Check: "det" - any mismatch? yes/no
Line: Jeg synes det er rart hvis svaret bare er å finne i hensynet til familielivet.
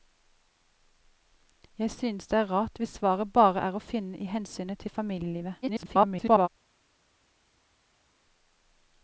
no